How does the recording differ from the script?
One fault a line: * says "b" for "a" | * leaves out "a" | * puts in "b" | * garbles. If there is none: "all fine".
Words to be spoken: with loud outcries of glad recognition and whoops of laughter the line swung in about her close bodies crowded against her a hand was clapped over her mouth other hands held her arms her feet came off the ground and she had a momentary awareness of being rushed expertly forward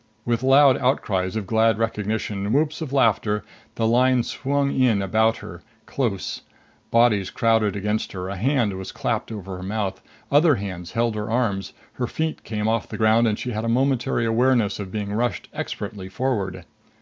all fine